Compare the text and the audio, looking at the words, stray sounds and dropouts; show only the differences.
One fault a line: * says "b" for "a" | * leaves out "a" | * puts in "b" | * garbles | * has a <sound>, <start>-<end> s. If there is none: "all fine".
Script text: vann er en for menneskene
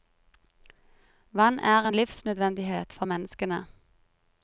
* puts in "livsnødvendighet"